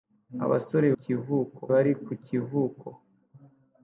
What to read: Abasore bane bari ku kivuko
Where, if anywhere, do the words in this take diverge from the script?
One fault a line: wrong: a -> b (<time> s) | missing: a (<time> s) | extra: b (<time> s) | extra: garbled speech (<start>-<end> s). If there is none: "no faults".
wrong: bane -> kivuko (1.0 s)